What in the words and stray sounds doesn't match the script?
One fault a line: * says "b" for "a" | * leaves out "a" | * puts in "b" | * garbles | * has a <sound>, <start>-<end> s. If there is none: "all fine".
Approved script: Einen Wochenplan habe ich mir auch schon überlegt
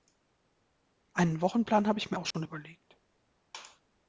* has a dropout, 2.3-2.3 s